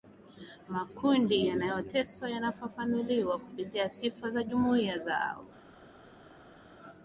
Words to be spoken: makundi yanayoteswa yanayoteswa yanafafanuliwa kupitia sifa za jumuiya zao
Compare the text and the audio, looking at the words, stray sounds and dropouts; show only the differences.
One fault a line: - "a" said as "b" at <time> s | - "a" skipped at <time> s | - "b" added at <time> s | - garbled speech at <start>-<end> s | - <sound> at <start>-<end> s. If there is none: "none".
- "yanayoteswa" skipped at 2.3 s